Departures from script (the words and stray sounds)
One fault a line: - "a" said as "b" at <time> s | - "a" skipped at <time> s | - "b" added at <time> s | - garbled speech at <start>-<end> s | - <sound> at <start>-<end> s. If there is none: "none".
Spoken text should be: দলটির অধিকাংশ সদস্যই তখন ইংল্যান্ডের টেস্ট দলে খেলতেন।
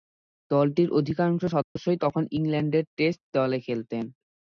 - dropout at 1.6-1.8 s